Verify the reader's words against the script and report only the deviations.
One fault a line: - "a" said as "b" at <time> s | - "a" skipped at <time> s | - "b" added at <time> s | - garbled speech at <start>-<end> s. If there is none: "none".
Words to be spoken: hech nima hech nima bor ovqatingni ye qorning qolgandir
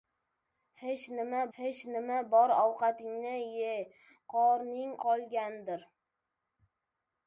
none